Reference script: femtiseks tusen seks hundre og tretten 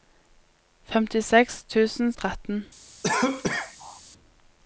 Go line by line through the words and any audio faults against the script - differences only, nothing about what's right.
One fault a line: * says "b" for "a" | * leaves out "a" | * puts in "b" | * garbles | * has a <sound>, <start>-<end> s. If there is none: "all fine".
* leaves out "seks hundre"
* has a cough, 3.0-4.0 s